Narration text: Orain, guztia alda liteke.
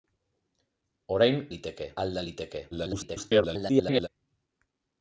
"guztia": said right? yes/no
no